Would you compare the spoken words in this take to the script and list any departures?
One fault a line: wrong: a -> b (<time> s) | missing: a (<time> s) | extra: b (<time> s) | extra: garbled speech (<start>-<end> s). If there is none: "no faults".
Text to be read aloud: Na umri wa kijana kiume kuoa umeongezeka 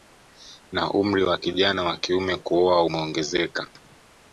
extra: wa (1.8 s)